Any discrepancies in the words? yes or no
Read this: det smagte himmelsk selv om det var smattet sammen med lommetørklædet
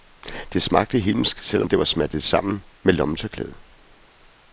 no